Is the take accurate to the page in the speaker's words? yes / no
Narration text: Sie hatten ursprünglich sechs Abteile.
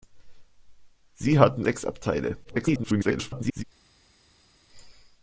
no